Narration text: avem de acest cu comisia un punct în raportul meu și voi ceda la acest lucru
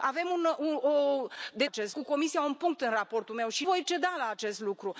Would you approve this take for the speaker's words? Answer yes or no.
yes